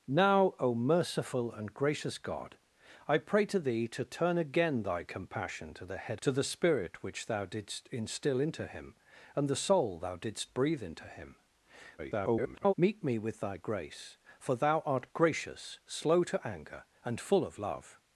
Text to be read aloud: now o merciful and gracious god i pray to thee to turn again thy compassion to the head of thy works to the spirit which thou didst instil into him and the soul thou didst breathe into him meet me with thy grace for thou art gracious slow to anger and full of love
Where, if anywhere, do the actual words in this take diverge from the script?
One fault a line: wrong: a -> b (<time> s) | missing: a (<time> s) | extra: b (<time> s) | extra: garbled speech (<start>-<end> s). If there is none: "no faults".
missing: of thy works (6.2 s)
extra: garbled speech (12.0-12.7 s)